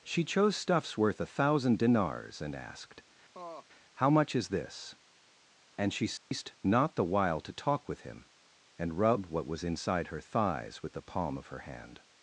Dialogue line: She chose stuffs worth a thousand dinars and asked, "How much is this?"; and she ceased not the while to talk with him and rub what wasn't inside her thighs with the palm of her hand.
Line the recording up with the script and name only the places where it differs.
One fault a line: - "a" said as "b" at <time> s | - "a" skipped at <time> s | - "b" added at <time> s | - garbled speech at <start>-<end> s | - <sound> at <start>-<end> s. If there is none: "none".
- laugh at 3.3-3.7 s
- dropout at 6.2-6.3 s
- "wasn't" said as "was" at 9.5 s